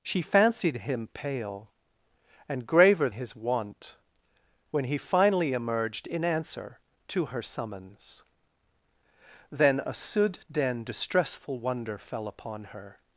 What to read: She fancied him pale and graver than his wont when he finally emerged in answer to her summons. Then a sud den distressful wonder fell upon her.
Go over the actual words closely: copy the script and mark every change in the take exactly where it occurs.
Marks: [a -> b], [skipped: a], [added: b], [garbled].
She fancied him pale and graver [skipped: than] his wont when he finally emerged in answer to her summons. Then a sud den distressful wonder fell upon her.